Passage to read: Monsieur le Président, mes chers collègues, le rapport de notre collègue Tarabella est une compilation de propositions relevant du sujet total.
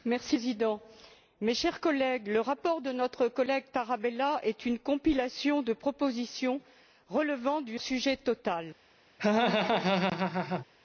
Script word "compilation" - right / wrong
right